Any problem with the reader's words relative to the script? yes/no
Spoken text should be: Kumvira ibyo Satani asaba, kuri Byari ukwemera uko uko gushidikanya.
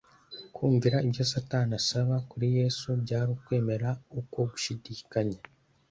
yes